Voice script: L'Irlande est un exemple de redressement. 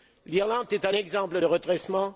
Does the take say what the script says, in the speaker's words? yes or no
yes